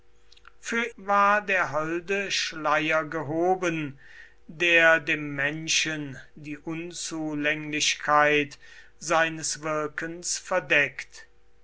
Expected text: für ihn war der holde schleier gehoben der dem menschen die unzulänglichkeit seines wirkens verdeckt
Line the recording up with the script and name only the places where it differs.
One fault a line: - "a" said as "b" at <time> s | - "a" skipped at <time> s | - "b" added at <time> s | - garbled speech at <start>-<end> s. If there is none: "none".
- "ihn" skipped at 0.8 s